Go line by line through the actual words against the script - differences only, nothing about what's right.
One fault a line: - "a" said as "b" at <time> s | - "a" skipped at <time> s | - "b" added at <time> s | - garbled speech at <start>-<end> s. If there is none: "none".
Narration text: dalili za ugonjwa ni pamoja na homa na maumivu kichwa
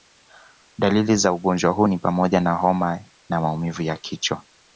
- "huu" added at 1.7 s
- "ya" added at 3.8 s